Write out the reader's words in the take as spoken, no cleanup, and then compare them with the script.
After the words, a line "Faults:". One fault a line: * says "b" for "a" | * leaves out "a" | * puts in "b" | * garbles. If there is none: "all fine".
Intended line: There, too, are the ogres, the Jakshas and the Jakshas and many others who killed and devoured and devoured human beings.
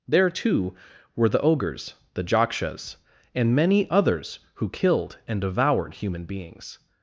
There, too, were the ogres, the Jakshas and many others who killed and devoured human beings.
Faults:
* says "were" for "are"
* leaves out "the Jakshas and"
* leaves out "and devoured"